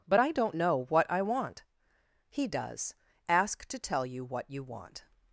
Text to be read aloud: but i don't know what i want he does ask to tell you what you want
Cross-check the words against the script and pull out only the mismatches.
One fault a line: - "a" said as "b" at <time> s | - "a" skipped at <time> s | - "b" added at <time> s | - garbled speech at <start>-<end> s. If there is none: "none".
none